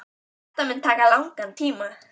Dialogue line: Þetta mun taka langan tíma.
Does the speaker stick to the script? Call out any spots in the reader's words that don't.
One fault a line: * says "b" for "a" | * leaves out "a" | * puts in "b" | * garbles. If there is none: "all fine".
all fine